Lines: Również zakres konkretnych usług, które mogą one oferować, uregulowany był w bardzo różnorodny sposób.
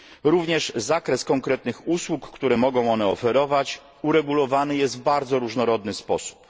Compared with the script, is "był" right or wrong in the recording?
wrong